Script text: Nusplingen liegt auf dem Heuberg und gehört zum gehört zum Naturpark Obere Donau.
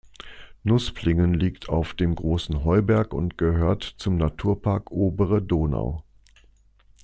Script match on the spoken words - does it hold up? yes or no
no